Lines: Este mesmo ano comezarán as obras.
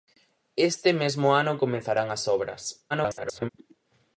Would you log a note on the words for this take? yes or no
yes